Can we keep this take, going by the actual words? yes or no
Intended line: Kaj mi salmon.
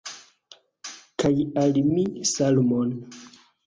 no